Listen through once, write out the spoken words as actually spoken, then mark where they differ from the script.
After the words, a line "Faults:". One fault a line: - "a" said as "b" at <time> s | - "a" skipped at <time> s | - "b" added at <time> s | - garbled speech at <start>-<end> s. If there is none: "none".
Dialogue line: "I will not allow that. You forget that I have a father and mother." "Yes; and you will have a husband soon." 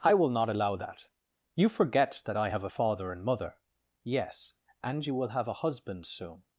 "I will not allow that. You forget that I have a father and mother." "Yes; and you will have a husband soon."
Faults:
none